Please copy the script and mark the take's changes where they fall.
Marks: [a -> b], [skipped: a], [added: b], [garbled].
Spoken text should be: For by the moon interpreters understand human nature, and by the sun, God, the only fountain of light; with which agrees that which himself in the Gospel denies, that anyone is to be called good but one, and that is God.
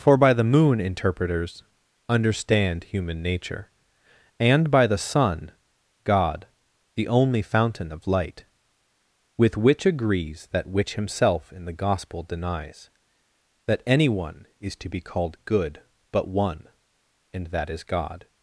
For by the moon interpreters understand human nature, and by the sun, God, the only fountain of light; with which agrees that which himself in the Gospel denies, that anyone is to be called good but one, and that is God.